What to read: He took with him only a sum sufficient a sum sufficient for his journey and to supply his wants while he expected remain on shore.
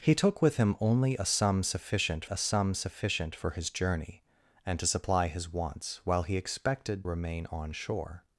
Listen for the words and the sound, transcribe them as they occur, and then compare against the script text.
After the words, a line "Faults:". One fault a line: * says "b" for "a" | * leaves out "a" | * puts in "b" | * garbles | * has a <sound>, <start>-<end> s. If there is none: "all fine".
He took with him only a sum sufficient a sum sufficient for his journey and to supply his wants while he expected remain on shore.
Faults:
all fine